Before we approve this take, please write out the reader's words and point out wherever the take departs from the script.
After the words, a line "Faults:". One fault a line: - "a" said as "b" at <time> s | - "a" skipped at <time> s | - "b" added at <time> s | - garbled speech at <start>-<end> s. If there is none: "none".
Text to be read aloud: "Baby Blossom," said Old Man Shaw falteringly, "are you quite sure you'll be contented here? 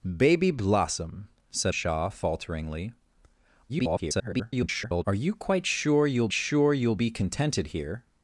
"Baby Blossom," said Shaw falteringly, [garbled] "are you quite sure you'll sure you'll be contented here?
Faults:
- "Old Man" skipped at 1.8 s
- garbled speech at 3.7-5.0 s
- "sure you'll" added at 6.3 s